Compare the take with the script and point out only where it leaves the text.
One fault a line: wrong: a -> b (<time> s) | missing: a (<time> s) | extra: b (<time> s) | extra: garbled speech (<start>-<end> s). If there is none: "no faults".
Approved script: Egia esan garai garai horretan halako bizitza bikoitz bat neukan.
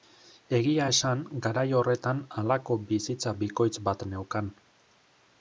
missing: garai (1.6 s)